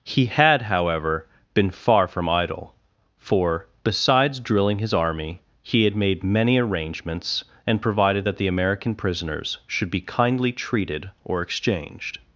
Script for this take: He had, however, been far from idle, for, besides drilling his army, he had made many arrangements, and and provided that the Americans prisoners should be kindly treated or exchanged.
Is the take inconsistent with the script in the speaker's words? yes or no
yes